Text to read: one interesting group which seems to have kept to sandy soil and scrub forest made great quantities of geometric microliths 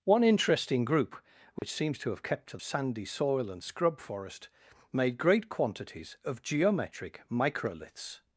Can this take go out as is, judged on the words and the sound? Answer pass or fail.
fail